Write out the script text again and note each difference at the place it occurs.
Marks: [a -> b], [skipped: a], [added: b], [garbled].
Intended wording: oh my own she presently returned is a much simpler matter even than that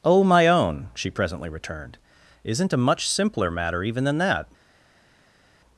oh my own she presently returned [is -> isn't] a much simpler matter even than that